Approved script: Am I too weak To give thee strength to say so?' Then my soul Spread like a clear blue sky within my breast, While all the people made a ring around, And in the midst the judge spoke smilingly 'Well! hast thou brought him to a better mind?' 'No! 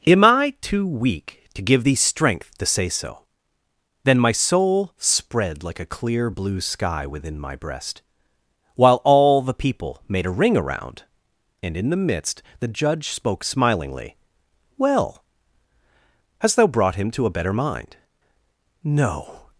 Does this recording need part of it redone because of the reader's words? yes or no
no